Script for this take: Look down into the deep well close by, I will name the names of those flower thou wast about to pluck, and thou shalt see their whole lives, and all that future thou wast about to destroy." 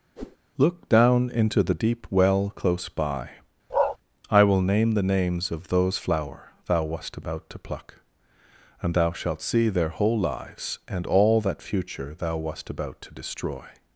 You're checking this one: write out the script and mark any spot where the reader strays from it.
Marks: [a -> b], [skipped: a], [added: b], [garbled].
Look down into the deep well close by, I will name the names of those flower thou wast about to pluck, and thou shalt see their whole lives, and all that future thou wast about to destroy."